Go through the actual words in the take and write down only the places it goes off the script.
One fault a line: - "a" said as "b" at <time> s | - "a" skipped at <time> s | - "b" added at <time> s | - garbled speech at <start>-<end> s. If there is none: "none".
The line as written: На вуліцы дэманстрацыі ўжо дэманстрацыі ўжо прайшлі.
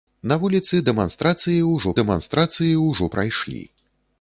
none